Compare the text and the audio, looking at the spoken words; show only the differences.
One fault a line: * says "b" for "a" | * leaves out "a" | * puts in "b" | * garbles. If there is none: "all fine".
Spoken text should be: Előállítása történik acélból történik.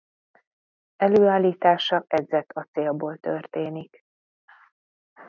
* says "edzett" for "történik"